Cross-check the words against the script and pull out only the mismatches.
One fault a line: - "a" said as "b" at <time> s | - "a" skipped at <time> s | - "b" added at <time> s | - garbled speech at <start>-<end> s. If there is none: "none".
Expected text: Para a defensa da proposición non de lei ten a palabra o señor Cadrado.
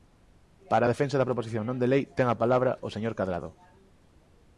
none